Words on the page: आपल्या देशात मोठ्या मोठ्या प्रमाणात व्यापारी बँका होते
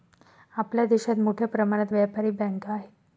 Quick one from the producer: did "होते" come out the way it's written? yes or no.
no